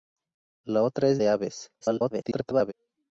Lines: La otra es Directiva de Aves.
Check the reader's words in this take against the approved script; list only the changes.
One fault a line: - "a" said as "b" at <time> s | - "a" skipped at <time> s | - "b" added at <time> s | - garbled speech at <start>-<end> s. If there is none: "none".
- "Directiva" skipped at 1.2 s
- garbled speech at 1.8-2.7 s